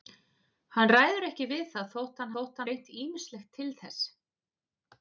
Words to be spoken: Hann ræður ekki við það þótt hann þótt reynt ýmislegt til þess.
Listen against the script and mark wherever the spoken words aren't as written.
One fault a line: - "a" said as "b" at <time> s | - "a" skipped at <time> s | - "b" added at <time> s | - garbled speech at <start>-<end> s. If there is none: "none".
none